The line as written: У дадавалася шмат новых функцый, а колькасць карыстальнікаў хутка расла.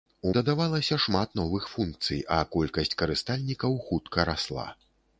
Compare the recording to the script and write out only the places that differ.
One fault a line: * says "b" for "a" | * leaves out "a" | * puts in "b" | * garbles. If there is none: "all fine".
all fine